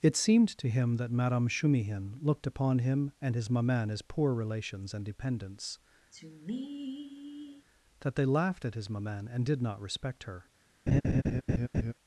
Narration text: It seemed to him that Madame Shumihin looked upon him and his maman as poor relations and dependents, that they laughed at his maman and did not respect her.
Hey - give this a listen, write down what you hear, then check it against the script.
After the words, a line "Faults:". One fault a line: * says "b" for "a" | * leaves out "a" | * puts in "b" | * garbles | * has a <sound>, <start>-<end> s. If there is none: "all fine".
It seemed to him that Madame Shumihin looked upon him and his maman as poor relations and dependents, that they laughed at his maman and did not respect her.
Faults:
* has a sigh, 6.1-7.7 s
* has a laugh, 10.9-11.9 s